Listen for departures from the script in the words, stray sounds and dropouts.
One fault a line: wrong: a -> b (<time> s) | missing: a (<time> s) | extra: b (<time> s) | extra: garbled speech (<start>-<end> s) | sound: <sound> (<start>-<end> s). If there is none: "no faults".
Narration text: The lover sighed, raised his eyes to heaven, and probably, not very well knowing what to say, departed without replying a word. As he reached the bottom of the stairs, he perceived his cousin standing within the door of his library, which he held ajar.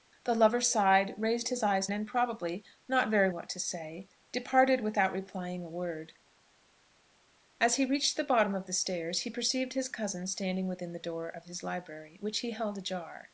missing: to heaven (1.9 s)
missing: well knowing (3.3 s)